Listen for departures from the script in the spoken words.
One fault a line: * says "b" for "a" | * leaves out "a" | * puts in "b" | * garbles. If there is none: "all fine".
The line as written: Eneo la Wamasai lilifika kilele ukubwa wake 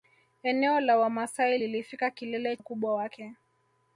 all fine